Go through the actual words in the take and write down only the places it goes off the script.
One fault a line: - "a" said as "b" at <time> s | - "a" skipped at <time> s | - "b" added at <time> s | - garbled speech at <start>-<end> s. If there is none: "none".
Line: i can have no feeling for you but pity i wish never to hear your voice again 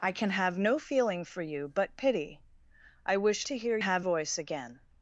- "never" skipped at 3.5 s
- "your" said as "have" at 3.8 s